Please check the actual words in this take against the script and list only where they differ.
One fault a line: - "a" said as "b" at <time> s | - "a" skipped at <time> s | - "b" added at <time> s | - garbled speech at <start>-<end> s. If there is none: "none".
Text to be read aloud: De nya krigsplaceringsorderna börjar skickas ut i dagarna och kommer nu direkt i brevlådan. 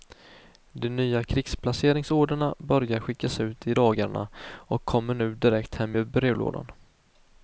- "hem" added at 5.7 s